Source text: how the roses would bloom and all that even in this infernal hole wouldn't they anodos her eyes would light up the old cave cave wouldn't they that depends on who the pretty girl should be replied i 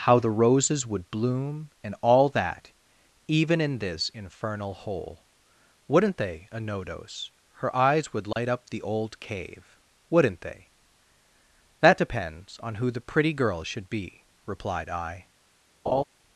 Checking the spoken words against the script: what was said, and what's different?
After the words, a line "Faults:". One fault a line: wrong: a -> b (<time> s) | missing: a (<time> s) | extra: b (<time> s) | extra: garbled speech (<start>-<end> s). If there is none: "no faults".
how the roses would bloom and all that even in this infernal hole wouldn't they anodos her eyes would light up the old cave wouldn't they that depends on who the pretty girl should be replied i
Faults:
missing: cave (9.8 s)